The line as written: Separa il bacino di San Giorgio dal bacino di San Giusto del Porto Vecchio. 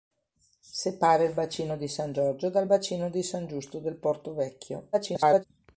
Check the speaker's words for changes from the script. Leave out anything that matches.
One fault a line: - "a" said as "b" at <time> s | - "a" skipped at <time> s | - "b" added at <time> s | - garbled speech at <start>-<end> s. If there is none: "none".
- garbled speech at 4.9-5.4 s